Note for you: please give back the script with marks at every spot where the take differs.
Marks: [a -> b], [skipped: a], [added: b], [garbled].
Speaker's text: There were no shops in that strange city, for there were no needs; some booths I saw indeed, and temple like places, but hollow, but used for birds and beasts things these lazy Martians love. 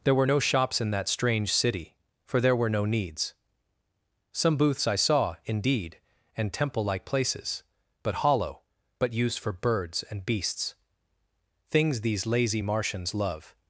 There were no shops in that strange city, for there were no needs; some booths I saw indeed, and temple like places, but hollow, but used for birds and beasts things these lazy Martians love.